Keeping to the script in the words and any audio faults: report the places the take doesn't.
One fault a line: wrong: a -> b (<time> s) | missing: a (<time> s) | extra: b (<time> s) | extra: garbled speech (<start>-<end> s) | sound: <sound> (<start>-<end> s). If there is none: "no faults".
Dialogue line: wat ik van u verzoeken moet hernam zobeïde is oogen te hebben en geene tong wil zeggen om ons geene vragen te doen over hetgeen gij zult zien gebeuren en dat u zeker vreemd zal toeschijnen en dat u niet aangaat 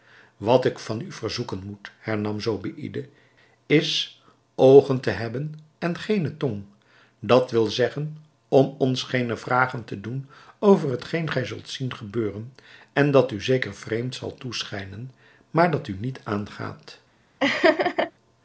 extra: dat (7.2 s)
wrong: en -> maar (15.5 s)
sound: laugh (17.4-18.1 s)